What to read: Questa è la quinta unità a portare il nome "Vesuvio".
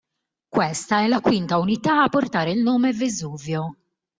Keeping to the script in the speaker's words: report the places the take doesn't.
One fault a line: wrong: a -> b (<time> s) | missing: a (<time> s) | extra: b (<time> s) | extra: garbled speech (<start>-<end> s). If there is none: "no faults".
no faults